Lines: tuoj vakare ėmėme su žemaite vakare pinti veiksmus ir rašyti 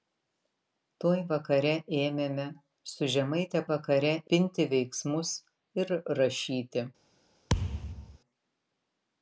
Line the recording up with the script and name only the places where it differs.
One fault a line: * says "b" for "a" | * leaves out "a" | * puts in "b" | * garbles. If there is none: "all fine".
all fine